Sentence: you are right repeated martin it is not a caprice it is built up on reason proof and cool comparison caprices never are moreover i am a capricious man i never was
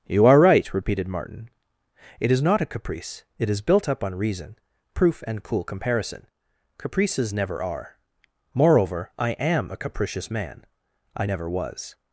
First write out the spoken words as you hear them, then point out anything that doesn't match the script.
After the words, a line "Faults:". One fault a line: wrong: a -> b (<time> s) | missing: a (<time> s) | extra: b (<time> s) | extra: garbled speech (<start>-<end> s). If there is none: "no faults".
you are right repeated martin it is not a caprice it is built up on reason proof and cool comparison caprices never are moreover i am a capricious man i never was
Faults:
no faults